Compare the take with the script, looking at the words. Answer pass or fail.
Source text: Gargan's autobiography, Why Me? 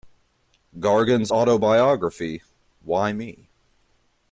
pass